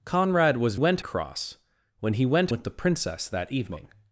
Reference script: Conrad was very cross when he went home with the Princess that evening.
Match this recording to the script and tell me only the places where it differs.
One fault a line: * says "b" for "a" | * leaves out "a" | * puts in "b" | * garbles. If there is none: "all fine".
* says "went" for "very"
* leaves out "home"